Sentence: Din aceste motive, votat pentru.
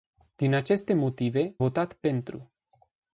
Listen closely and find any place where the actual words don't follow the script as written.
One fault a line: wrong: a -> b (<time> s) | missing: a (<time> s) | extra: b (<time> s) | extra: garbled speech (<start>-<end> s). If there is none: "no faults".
no faults